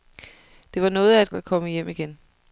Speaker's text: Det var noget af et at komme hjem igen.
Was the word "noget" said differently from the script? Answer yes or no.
no